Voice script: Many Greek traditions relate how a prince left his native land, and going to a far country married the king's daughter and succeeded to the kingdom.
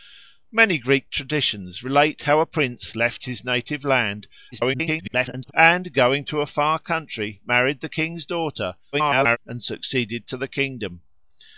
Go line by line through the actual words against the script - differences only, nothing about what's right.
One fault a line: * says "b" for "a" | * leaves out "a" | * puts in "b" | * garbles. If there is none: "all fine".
* garbles
* garbles